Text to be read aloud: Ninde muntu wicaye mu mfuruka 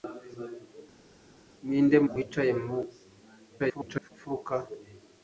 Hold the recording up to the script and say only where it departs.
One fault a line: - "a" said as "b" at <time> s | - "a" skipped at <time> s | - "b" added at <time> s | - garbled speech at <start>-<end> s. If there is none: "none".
- "muntu" skipped at 2.0 s
- garbled speech at 3.6-4.1 s